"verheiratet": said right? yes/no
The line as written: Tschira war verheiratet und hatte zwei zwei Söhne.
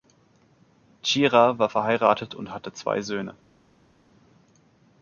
yes